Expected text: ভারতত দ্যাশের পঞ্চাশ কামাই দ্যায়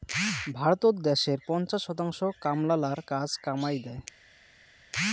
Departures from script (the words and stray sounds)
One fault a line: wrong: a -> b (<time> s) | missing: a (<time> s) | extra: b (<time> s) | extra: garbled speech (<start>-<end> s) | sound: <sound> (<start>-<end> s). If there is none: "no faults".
extra: শতাংশ কামলালার কাজ (1.8 s)